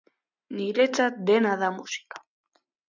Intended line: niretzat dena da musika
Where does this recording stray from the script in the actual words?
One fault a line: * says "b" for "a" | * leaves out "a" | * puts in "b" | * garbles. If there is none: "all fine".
all fine